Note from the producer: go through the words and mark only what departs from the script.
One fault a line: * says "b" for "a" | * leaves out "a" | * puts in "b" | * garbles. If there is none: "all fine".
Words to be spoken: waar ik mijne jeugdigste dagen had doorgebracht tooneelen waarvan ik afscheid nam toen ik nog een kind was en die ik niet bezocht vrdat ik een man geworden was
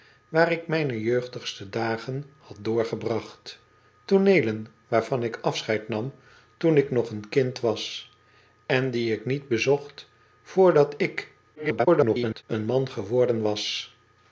* garbles